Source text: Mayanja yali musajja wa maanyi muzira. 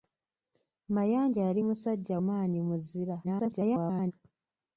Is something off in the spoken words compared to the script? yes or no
yes